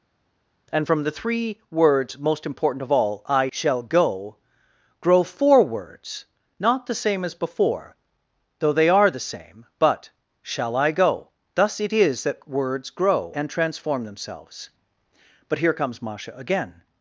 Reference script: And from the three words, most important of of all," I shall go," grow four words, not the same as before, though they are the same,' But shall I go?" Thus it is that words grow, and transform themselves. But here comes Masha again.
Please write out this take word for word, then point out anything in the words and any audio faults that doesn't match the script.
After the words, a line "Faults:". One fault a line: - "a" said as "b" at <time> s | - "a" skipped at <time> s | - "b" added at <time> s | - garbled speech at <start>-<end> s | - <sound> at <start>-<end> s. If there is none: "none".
And from the three words, most important of all," I shall go," grow four words, not the same as before, though they are the same,' But shall I go?" Thus it is that words grow, and transform themselves. But here comes Masha again.
Faults:
- "of" skipped at 2.9 s